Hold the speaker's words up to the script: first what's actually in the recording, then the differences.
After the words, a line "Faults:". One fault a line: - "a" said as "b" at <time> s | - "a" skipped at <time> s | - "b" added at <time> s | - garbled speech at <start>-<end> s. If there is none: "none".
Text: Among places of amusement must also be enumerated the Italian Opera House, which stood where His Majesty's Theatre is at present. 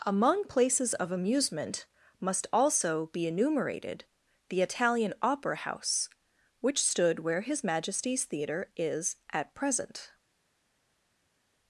Among places of amusement must also be enumerated the Italian Opera House, which stood where His Majesty's Theatre is at present.
Faults:
none